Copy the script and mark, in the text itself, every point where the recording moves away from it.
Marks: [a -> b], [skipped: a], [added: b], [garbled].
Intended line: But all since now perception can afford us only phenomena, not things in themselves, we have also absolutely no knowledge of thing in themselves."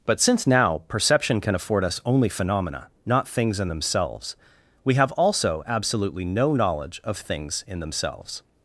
But [skipped: all] since now perception can afford us only phenomena, not things in themselves, we have also absolutely no knowledge of [thing -> things] in themselves."